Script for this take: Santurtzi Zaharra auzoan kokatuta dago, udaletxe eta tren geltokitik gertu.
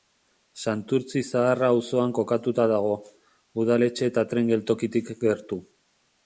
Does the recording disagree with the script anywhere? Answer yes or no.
no